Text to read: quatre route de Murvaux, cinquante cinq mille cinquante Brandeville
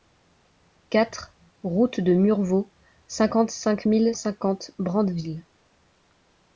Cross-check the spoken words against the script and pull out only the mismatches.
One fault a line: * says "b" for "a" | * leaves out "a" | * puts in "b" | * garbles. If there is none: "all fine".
all fine